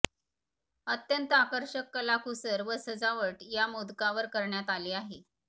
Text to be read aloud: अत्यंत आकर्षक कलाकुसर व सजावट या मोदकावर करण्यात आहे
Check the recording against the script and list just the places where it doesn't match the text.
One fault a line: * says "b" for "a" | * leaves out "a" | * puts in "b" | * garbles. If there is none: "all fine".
* puts in "आली"